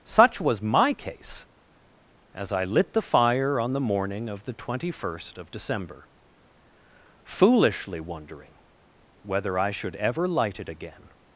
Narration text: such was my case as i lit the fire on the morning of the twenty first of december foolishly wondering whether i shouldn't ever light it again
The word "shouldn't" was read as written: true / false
false